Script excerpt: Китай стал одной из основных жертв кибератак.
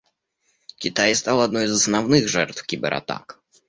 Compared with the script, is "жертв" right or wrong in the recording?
right